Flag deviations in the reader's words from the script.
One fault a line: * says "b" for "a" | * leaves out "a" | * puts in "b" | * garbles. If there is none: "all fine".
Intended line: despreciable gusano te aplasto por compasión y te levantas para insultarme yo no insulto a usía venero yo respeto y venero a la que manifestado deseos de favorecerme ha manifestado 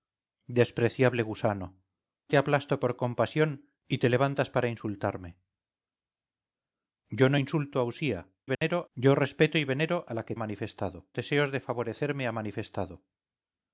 all fine